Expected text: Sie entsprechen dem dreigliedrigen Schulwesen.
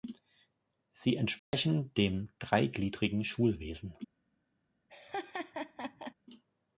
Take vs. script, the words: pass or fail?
pass